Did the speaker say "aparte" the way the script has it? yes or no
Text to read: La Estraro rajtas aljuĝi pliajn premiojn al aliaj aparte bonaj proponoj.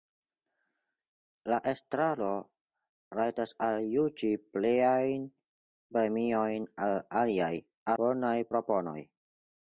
no